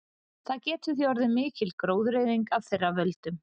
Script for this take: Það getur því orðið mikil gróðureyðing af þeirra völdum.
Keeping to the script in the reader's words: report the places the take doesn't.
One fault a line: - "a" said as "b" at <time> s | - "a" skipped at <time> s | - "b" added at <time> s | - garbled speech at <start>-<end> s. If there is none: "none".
none